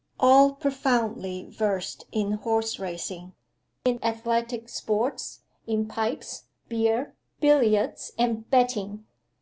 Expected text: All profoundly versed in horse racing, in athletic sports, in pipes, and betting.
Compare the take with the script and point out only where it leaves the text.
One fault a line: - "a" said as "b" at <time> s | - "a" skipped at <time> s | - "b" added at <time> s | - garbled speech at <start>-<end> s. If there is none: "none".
- "beer billiards" added at 6.7 s